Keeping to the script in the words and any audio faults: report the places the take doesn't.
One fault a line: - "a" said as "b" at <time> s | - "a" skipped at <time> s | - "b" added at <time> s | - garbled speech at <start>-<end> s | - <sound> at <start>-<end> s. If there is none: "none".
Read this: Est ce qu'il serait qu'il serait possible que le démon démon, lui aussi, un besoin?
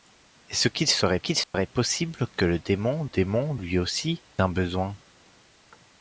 - dropout at 1.4-1.5 s